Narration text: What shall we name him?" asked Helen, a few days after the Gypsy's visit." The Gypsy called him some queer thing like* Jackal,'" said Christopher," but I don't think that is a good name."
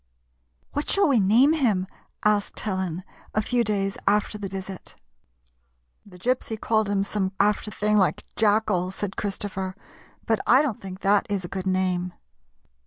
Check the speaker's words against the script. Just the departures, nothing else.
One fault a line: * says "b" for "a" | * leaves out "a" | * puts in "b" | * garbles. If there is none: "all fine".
* leaves out "Gypsy's"
* says "after" for "queer"